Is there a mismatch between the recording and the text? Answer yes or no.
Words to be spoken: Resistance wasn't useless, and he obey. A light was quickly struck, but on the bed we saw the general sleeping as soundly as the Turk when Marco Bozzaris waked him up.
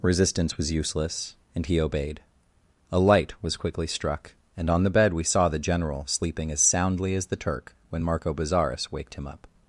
yes